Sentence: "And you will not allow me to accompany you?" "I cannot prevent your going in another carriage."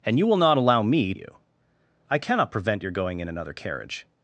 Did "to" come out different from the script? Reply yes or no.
yes